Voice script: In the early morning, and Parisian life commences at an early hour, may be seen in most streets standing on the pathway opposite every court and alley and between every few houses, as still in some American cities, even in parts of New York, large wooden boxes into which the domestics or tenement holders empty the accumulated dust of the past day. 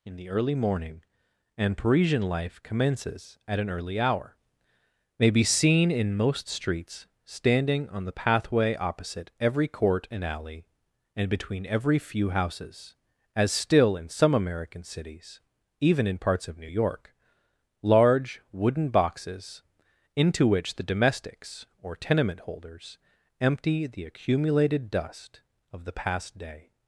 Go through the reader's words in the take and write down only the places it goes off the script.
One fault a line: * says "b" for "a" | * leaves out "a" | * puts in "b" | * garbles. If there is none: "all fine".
all fine